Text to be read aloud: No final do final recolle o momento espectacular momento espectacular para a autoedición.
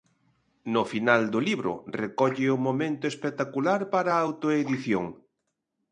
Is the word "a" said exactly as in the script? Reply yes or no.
yes